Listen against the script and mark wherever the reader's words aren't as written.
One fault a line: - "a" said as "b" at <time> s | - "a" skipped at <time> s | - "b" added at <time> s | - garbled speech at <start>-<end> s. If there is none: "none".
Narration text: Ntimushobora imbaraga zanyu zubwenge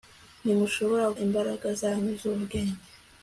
none